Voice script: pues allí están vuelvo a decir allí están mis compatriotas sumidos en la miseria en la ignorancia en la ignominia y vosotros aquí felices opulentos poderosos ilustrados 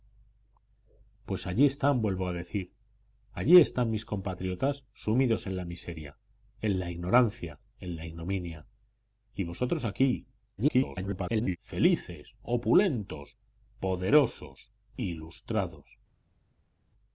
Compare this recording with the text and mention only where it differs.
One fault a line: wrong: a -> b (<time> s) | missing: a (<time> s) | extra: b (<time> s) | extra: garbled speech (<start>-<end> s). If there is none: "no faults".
extra: garbled speech (10.6-11.6 s)